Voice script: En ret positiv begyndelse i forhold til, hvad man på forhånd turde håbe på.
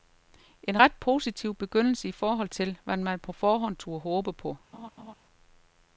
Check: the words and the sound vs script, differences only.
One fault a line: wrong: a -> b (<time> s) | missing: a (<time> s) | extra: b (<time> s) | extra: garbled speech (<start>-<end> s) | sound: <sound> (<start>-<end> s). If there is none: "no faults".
sound: laugh (4.7-5.1 s)